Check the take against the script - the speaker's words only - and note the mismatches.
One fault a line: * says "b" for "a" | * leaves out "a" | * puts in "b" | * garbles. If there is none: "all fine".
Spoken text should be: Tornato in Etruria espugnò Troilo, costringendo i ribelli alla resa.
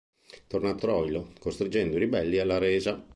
* leaves out "in Etruria espugnò"